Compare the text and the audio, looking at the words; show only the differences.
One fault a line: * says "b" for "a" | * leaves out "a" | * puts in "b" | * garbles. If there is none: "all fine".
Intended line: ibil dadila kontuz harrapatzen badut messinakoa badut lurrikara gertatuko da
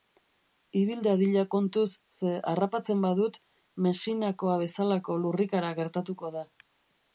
* puts in "ze"
* says "bezalako" for "badut"